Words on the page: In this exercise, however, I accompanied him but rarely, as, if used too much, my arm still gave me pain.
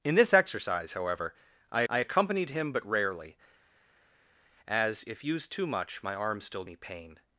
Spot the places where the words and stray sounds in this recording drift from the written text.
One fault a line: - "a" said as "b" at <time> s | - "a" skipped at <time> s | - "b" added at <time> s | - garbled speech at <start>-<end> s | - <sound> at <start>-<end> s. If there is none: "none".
- "I" added at 1.9 s
- "gave" skipped at 6.6 s